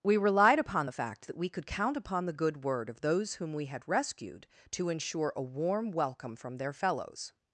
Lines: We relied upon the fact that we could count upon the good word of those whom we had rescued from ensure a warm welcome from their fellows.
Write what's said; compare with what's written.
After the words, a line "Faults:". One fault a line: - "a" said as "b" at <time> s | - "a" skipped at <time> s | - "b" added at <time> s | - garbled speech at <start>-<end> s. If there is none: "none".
We relied upon the fact that we could count upon the good word of those whom we had rescued to ensure a warm welcome from their fellows.
Faults:
- "from" said as "to" at 4.7 s